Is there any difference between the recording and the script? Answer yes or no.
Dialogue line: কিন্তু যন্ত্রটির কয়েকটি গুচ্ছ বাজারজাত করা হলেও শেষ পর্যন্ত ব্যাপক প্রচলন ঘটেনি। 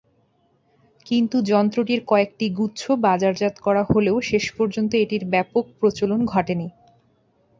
yes